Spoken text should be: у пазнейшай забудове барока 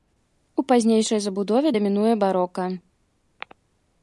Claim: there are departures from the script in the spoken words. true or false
true